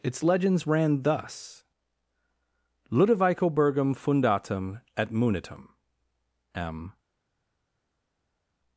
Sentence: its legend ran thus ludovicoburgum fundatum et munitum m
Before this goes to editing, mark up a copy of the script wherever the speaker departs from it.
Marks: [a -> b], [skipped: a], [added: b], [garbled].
its [legend -> legends] ran thus ludovicoburgum fundatum et munitum m